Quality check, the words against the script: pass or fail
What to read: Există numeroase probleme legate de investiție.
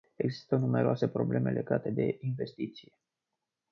pass